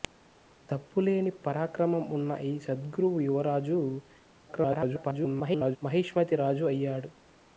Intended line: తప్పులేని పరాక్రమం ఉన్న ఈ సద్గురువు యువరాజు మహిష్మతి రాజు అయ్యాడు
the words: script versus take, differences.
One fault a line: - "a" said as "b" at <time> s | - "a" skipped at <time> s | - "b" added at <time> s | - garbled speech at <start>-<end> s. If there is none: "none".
- garbled speech at 4.5-5.8 s